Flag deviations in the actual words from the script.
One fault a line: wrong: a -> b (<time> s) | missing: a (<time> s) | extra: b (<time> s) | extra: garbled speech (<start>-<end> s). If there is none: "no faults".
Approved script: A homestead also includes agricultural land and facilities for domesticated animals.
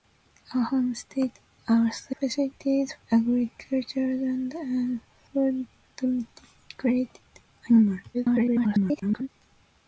wrong: includes -> facilities (2.2 s)
missing: facilities (5.0 s)
extra: garbled speech (8.1-9.3 s)